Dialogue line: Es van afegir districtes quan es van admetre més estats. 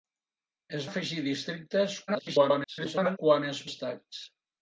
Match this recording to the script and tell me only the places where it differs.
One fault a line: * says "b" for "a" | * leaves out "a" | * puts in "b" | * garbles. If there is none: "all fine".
* leaves out "van"
* garbles
* leaves out "van admetre més"